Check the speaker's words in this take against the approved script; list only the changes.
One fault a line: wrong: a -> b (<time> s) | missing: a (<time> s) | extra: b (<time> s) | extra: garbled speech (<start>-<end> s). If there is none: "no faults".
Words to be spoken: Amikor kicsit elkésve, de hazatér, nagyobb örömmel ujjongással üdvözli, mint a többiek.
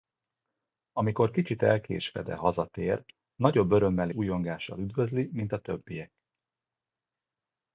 no faults